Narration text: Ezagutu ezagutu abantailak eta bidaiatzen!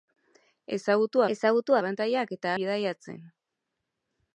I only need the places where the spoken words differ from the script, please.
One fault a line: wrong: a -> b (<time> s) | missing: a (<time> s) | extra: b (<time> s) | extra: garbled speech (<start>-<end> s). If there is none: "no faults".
no faults